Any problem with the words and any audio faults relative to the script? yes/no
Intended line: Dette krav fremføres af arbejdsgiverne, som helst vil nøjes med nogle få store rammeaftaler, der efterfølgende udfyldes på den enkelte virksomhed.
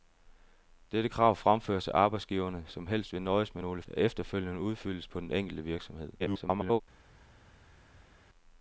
yes